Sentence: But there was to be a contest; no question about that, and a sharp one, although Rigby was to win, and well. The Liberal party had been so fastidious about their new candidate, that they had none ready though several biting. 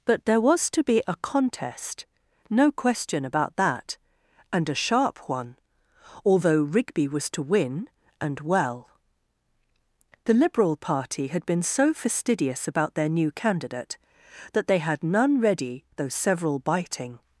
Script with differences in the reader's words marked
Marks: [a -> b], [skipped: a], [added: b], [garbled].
But there was to be a contest; no question about that, and a sharp one, although Rigby was to win, and well. The Liberal party had been so fastidious about their new candidate, that they had none ready though several biting.